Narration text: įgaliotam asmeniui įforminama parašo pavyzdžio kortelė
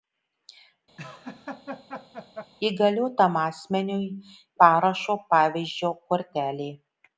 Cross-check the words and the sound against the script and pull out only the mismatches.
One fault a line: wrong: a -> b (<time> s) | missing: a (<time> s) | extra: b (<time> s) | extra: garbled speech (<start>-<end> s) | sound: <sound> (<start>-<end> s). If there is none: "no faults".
sound: laugh (1.0-2.5 s)
missing: įforminama (4.0 s)